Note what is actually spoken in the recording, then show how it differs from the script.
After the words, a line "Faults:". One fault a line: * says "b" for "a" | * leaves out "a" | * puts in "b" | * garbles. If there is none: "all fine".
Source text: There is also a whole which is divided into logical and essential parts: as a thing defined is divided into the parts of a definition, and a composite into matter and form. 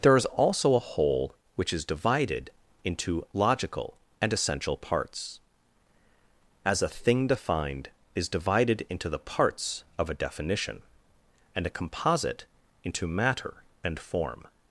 There is also a whole which is divided into logical and essential parts: as a thing defined is divided into the parts of a definition, and a composite into matter and form.
Faults:
all fine